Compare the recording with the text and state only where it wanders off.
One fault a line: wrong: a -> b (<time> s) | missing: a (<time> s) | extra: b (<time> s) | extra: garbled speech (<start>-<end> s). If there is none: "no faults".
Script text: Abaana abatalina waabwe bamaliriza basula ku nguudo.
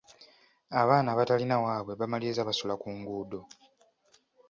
no faults